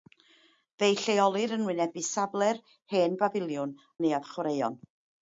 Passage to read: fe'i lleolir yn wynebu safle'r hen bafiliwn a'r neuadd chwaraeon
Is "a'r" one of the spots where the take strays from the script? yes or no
yes